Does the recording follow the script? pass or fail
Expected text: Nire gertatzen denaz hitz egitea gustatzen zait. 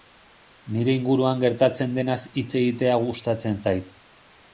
fail